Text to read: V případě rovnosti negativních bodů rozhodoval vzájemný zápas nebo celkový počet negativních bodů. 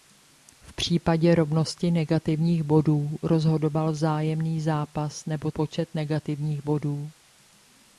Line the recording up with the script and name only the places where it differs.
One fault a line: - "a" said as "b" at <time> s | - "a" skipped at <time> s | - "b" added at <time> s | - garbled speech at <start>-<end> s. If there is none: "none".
- "celkový" skipped at 5.5 s